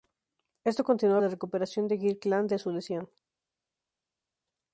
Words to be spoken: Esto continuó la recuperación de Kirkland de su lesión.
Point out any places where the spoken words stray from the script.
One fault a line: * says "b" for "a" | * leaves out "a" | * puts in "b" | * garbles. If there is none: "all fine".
all fine